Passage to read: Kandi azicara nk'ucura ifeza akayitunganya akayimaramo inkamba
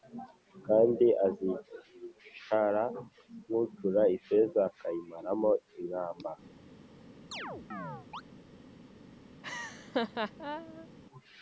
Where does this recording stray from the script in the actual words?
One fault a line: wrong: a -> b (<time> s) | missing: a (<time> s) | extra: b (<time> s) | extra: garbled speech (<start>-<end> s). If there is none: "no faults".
missing: akayitunganya (4.6 s)